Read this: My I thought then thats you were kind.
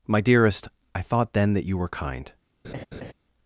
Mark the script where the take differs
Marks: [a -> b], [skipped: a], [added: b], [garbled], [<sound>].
My [added: dearest] I thought then [thats -> that] you were kind. [laugh]